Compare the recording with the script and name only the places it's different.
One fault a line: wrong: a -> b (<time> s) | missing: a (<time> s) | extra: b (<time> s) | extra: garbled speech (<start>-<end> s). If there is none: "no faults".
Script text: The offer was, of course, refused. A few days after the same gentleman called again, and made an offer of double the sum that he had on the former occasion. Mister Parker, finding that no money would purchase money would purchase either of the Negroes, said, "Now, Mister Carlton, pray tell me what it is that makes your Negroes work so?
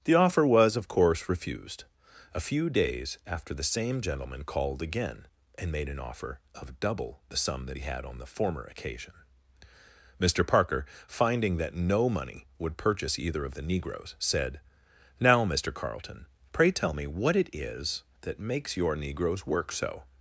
missing: money would purchase (13.2 s)